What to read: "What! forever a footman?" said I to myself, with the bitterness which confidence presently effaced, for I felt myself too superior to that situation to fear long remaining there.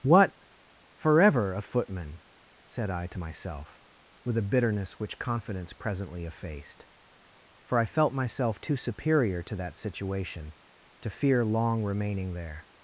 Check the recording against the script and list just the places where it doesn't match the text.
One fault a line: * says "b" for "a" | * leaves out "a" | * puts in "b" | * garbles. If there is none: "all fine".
* says "a" for "the"